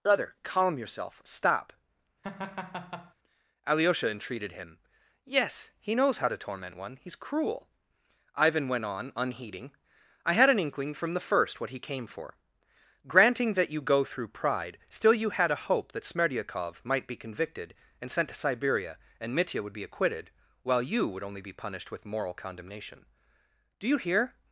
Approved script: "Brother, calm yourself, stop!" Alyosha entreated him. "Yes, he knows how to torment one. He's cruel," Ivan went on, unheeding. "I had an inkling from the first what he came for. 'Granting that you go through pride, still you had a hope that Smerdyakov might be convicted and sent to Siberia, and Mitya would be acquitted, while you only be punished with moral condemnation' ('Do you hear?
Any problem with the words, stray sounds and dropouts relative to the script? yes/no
yes